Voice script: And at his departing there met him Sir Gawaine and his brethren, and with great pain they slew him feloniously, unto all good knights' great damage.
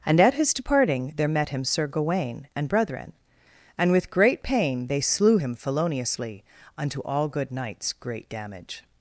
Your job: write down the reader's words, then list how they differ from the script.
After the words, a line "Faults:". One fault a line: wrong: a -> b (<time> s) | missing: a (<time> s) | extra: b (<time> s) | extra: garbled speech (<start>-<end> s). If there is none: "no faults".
And at his departing there met him Sir Gawaine and brethren, and with great pain they slew him feloniously, unto all good knights' great damage.
Faults:
missing: his (2.7 s)